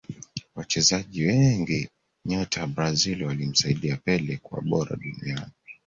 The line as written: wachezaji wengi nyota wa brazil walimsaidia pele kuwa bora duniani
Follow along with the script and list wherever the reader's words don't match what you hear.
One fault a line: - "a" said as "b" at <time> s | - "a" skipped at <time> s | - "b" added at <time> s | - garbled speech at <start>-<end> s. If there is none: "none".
none